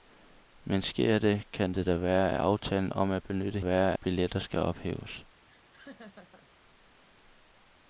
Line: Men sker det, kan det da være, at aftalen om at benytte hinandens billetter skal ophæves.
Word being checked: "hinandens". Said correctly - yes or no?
no